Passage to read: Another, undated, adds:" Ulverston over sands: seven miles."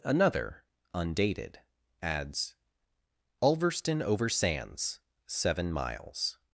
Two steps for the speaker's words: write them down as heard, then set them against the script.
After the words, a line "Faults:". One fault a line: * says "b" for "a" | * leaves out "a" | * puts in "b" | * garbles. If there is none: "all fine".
Another, undated, adds:" Ulverston over sands: seven miles."
Faults:
all fine